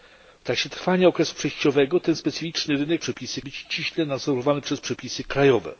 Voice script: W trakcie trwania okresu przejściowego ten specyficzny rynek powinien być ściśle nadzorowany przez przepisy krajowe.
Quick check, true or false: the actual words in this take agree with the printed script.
false